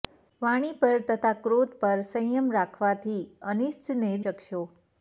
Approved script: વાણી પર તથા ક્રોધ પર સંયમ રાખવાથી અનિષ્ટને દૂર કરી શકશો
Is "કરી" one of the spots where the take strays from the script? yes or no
yes